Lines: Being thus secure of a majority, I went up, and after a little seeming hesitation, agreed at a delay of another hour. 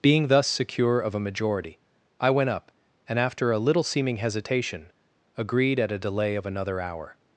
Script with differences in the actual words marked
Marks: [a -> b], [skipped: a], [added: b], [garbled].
Being thus secure of a majority, I went up, and after a little seeming hesitation, agreed at a delay of another hour.